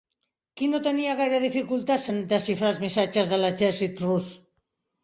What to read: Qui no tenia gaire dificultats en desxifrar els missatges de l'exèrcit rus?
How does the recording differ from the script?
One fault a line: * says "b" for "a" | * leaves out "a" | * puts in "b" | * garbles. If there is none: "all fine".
all fine